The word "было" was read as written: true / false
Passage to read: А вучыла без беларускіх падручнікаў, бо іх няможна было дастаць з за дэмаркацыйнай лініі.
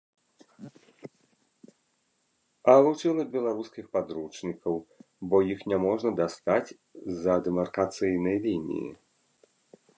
false